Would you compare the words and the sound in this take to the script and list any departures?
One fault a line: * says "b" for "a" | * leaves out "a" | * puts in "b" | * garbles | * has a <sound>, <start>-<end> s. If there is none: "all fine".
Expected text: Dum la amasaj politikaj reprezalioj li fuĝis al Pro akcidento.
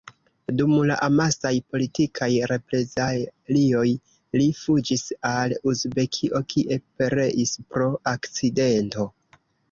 * puts in "Uzbekio kie pereis"